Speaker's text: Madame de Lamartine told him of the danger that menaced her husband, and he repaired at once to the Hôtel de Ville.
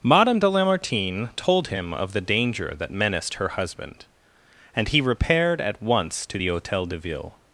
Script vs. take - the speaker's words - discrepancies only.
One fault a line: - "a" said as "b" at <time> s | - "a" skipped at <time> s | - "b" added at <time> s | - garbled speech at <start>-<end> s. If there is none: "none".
none